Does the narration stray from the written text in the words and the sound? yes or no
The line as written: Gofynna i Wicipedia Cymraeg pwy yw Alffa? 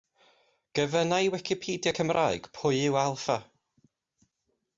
no